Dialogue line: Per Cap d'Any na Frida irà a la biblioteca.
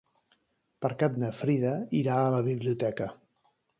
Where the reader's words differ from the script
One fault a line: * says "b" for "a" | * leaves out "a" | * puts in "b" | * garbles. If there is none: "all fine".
* leaves out "d'Any"